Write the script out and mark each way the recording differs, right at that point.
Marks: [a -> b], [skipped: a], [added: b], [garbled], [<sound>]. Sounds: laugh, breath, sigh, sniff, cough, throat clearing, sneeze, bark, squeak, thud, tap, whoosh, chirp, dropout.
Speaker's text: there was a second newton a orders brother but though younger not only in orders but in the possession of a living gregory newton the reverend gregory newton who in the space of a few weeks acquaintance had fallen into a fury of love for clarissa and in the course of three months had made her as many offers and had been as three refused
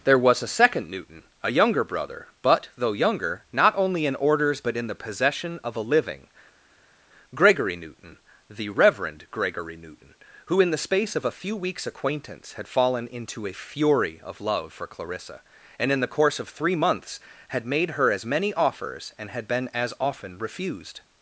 there was a second newton a [orders -> younger] brother but though younger not only in orders but in the possession of a living gregory newton the reverend gregory newton who in the space of a few weeks acquaintance had fallen into a fury of love for clarissa and in the course of three months had made her as many offers and had been as [three -> often] refused